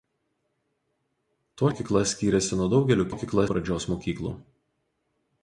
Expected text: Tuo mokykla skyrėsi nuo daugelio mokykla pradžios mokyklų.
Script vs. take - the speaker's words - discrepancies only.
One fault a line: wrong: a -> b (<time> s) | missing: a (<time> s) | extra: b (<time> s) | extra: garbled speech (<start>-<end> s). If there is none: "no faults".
no faults